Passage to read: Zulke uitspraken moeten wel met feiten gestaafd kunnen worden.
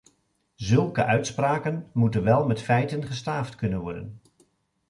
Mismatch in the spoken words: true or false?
false